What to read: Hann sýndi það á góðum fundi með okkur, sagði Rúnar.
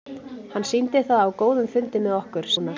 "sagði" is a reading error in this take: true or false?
true